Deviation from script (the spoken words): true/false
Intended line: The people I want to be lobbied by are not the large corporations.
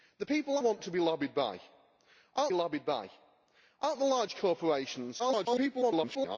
true